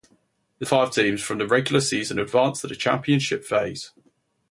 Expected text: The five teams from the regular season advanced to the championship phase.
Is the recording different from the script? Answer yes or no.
no